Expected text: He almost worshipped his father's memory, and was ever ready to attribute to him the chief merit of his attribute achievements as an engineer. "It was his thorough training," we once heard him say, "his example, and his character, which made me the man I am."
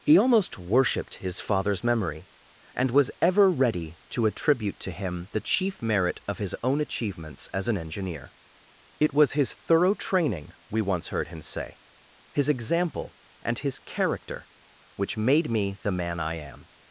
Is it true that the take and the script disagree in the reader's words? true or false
true